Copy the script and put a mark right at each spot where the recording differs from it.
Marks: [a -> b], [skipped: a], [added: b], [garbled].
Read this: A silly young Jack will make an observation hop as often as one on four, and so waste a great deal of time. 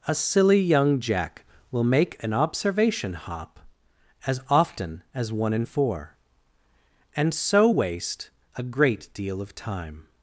A silly young Jack will make an observation hop as often as one [on -> in] four, and so waste a great deal of time.